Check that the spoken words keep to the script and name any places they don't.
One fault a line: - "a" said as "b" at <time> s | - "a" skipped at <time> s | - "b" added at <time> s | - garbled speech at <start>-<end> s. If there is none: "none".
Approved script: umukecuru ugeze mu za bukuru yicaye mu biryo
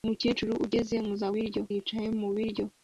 - "bukuru" said as "biryo" at 1.3 s